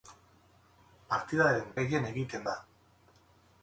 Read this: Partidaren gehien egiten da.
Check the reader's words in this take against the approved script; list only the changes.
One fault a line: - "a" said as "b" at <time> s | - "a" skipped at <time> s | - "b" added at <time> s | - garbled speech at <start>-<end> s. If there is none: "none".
none